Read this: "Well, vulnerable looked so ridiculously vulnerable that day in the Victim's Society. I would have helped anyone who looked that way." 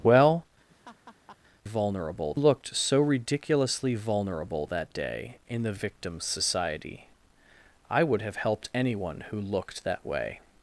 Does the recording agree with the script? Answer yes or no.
yes